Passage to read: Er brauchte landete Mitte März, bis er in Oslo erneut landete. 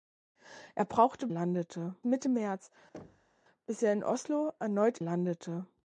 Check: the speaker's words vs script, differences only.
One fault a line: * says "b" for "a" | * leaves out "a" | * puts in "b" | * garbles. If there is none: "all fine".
all fine